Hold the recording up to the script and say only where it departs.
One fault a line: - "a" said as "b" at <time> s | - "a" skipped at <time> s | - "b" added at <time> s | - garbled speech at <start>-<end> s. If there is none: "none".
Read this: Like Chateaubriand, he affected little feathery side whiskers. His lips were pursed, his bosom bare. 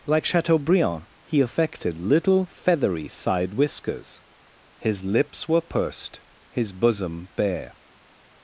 none